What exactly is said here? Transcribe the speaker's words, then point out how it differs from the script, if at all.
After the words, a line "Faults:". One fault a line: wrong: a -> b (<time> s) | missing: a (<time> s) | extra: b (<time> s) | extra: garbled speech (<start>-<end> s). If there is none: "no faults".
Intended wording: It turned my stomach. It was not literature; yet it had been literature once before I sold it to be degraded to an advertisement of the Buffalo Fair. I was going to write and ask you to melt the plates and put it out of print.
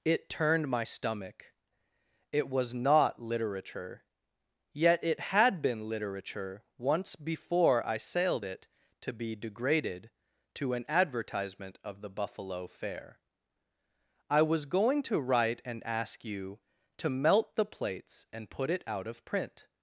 It turned my stomach. It was not literature; yet it had been literature once before I sailed it to be degraded to an advertisement of the Buffalo Fair. I was going to write and ask you to melt the plates and put it out of print.
Faults:
wrong: sold -> sailed (8.0 s)